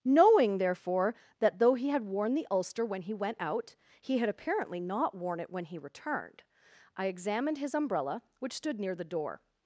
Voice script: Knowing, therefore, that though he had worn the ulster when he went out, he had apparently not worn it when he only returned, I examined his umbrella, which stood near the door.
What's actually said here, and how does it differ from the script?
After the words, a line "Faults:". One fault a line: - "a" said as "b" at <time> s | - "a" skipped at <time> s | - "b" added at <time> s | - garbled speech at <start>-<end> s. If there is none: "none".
Knowing, therefore, that though he had worn the ulster when he went out, he had apparently not worn it when he returned, I examined his umbrella, which stood near the door.
Faults:
- "only" skipped at 5.8 s